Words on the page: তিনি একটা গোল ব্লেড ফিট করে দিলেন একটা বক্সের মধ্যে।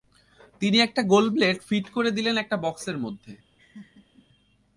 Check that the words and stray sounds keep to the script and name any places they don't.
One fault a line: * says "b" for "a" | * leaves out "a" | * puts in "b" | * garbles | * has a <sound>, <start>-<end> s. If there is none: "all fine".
* has a laugh, 3.6-4.3 s